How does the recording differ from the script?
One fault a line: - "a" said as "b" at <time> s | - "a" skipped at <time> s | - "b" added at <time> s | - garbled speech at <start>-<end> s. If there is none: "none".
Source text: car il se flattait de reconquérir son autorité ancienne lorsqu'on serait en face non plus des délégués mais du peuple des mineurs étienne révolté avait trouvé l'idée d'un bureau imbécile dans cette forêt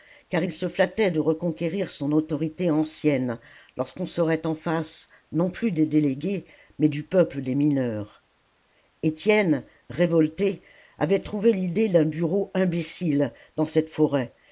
none